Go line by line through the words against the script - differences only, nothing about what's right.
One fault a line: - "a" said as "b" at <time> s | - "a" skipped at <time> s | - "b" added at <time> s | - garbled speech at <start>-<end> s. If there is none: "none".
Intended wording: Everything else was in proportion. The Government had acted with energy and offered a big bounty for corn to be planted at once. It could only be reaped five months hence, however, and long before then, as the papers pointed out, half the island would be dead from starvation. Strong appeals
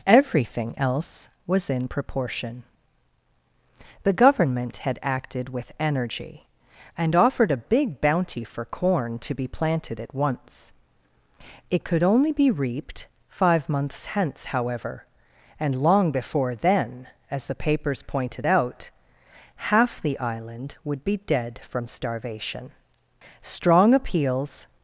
none